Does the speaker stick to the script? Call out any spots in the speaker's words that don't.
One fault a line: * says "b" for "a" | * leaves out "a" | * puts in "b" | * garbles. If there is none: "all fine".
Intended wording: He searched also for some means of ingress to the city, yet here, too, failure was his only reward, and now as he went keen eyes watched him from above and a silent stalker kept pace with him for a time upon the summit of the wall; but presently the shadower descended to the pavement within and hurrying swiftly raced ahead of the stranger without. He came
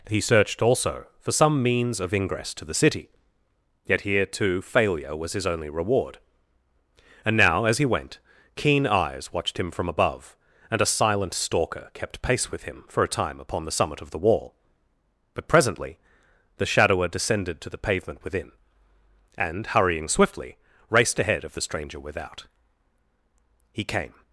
all fine